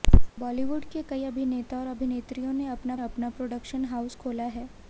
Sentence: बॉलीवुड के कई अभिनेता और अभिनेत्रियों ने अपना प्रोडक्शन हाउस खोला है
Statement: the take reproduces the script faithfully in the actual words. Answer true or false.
false